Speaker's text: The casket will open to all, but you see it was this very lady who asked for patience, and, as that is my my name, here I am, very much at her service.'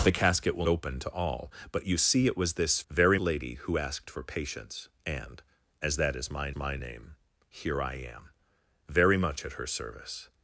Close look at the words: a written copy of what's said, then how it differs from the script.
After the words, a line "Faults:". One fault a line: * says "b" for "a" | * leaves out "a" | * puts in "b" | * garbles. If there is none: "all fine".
The casket will open to all, but you see it was this very lady who asked for patience, and, as that is my my name, here I am, very much at her service.'
Faults:
all fine